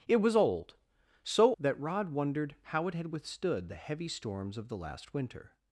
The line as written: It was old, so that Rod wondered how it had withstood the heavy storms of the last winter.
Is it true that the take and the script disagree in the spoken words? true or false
false